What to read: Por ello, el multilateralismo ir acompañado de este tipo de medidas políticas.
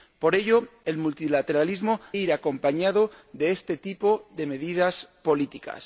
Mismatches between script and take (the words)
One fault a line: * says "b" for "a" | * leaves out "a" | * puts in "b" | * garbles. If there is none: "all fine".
all fine